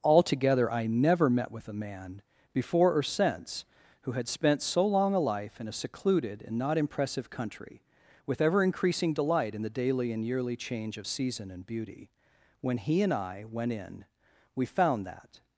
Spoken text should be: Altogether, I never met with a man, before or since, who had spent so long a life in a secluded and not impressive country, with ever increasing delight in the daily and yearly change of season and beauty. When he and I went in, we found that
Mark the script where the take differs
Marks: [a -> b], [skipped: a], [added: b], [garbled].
Altogether, I never met with a man, before or since, who had spent so long a life in a secluded and not impressive country, with ever increasing delight in the daily and yearly change of season and beauty. When he and I went in, we found that